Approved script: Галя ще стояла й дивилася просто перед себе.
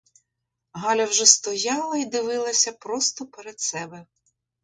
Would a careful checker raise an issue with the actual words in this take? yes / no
yes